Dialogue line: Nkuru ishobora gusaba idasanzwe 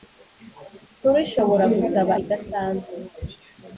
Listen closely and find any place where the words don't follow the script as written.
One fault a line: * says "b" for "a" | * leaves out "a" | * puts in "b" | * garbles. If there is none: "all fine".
all fine